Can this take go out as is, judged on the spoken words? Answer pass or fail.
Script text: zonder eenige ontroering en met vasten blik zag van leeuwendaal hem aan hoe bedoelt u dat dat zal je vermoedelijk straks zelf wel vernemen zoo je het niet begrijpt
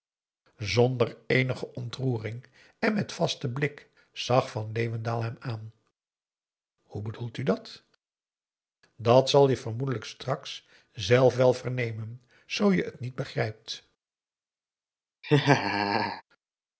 pass